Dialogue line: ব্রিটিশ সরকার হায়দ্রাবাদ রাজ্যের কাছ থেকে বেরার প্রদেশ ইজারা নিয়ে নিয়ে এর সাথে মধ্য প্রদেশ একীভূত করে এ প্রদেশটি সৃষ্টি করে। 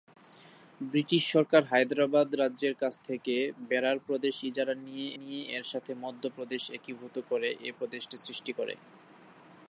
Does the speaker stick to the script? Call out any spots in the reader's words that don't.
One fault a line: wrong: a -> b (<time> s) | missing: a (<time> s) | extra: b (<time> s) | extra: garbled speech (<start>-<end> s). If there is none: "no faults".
no faults